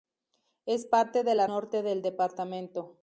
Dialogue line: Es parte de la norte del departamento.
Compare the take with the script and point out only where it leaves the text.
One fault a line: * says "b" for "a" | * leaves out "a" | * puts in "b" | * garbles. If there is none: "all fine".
all fine